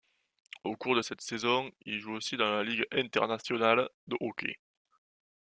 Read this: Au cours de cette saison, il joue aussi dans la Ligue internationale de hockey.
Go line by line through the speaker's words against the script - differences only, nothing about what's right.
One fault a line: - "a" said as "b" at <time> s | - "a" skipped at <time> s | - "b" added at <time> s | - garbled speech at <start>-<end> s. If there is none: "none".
none